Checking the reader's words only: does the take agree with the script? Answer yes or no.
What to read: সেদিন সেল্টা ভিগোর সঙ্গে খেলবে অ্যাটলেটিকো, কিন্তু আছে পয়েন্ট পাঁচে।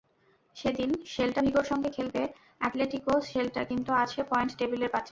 no